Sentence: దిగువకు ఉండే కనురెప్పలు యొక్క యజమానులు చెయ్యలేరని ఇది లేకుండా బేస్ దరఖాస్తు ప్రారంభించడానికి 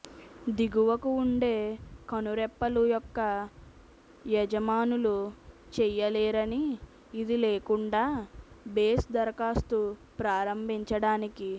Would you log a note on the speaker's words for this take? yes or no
no